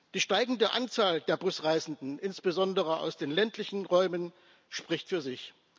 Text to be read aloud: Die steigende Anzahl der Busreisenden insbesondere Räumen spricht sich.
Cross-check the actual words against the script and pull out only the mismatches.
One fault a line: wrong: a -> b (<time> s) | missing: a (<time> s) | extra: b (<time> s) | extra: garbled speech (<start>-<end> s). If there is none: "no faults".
extra: aus den ländlichen (3.0 s)
extra: für (5.1 s)